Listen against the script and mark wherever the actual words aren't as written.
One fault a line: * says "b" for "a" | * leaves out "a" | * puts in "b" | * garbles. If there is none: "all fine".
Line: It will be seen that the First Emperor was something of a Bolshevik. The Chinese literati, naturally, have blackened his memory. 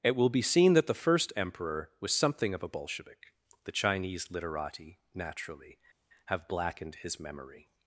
all fine